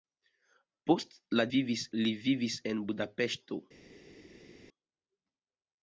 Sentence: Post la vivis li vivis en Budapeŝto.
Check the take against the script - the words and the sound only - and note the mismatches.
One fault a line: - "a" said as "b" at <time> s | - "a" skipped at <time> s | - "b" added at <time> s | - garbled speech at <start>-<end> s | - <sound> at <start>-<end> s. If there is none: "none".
none